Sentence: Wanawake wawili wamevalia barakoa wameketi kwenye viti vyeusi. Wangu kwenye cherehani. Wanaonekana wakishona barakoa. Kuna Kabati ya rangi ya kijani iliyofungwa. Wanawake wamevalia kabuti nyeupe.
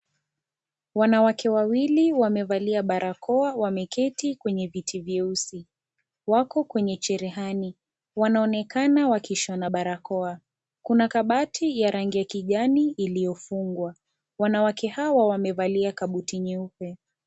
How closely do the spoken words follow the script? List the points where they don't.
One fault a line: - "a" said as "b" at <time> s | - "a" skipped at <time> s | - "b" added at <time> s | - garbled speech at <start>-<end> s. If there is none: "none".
- "Wangu" said as "Wako" at 6.3 s
- "hawa" added at 14.9 s